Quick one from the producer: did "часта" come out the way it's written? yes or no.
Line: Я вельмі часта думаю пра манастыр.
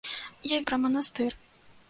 no